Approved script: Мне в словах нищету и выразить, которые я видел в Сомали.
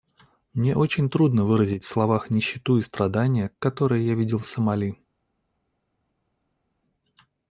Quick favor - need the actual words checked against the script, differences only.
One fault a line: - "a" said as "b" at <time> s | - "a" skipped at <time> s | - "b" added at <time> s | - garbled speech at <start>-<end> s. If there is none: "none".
- "очень трудно выразить" added at 0.8 s
- "выразить" said as "страдания" at 2.8 s